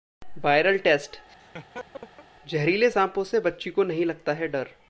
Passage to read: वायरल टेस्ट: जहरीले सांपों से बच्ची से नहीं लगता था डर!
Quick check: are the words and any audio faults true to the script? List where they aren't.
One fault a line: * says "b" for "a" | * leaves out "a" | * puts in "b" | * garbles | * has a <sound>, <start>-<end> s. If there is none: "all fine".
* has a laugh, 1.3-2.3 s
* says "को" for "से"
* says "है" for "था"